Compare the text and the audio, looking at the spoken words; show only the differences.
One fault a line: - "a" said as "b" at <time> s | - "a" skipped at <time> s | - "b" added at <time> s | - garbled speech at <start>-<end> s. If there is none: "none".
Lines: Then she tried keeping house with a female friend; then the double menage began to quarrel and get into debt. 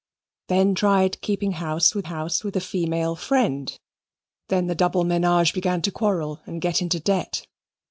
- "she" skipped at 0.7 s
- "house with" added at 2.0 s